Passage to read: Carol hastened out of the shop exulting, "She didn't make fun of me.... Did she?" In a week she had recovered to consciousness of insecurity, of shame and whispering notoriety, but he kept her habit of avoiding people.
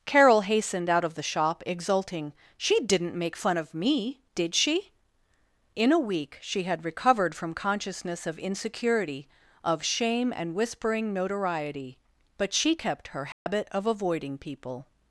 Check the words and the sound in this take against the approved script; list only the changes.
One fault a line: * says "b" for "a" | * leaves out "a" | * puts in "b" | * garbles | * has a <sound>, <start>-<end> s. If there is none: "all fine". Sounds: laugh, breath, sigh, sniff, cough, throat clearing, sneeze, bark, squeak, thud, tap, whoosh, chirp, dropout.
* says "from" for "to"
* says "she" for "he"
* has a dropout, 13.3-13.5 s